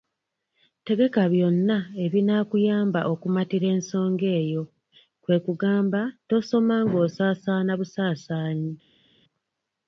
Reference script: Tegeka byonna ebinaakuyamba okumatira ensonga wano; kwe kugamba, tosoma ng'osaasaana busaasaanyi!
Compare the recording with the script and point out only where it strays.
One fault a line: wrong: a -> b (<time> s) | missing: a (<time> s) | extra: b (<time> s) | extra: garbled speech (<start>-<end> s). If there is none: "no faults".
wrong: wano -> eyo (4.4 s)